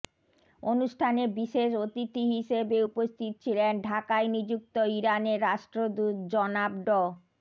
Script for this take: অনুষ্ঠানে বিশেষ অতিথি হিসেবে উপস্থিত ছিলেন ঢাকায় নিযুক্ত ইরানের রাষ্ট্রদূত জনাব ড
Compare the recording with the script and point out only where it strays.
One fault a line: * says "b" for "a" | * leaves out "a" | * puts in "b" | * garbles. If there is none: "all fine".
all fine